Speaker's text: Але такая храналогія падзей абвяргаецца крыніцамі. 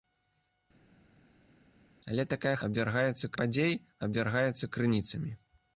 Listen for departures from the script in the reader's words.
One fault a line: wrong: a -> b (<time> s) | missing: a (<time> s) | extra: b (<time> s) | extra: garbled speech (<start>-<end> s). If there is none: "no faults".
wrong: храналогія -> абвяргаецца (2.7 s)